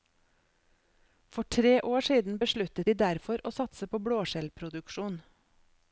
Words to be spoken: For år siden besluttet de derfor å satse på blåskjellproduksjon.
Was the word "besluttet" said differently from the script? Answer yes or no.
no